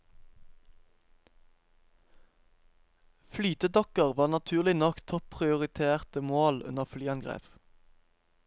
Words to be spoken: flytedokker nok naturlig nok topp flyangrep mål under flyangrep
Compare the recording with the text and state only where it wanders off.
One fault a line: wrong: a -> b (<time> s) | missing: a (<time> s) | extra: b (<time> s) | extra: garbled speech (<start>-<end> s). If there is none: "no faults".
wrong: nok -> var (4.1 s)
wrong: flyangrep -> prioriterte (5.3 s)